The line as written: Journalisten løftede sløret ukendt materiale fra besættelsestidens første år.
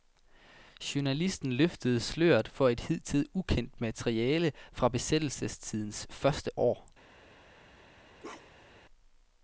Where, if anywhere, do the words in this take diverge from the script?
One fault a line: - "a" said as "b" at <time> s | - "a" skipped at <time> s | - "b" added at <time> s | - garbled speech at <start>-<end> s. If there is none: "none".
- "for et hidtil" added at 2.5 s